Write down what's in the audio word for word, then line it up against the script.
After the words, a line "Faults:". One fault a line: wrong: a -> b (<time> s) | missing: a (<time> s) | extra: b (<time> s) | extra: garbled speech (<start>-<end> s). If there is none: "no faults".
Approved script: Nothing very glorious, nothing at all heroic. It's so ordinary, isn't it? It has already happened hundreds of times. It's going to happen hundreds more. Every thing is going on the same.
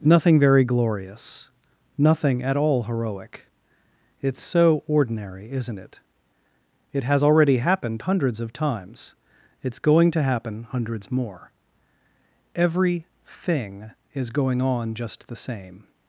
Nothing very glorious, nothing at all heroic. It's so ordinary, isn't it? It has already happened hundreds of times. It's going to happen hundreds more. Every thing is going on just the same.
Faults:
extra: just (14.9 s)